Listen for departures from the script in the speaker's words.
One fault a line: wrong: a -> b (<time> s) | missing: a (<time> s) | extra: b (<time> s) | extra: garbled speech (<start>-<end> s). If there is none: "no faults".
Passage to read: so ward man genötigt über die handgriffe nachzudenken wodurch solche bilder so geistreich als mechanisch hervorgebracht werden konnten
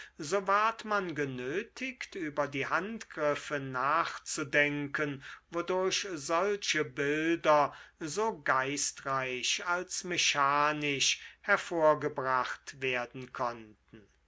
no faults